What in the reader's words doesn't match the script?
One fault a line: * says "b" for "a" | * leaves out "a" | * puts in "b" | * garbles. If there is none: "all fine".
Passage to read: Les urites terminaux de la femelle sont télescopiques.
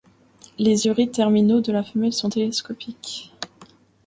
all fine